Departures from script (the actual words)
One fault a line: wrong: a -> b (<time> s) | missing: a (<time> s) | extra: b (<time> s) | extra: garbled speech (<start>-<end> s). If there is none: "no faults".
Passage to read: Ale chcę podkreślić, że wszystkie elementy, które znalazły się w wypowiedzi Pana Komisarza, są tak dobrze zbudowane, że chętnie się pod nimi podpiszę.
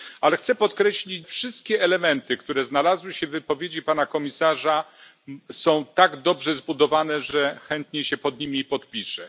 missing: że (1.3 s)